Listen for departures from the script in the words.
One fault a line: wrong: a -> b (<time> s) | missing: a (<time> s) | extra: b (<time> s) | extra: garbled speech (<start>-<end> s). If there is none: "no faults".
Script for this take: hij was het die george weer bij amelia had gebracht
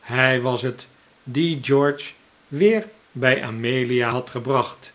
no faults